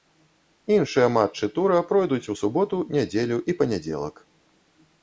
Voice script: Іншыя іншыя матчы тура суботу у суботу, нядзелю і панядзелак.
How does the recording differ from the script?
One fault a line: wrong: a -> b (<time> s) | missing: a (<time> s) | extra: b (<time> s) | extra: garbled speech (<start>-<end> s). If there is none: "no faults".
missing: іншыя (1.1 s)
wrong: суботу -> пройдуць (1.9 s)